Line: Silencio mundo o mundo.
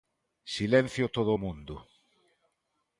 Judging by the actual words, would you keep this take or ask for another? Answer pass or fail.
fail